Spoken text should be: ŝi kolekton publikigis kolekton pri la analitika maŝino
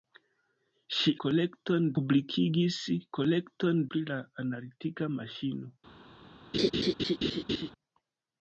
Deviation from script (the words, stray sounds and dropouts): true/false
true